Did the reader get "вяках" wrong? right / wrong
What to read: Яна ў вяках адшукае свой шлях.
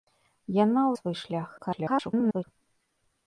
wrong